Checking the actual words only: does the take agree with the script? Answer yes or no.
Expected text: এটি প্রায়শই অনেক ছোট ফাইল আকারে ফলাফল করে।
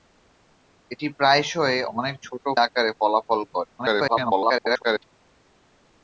no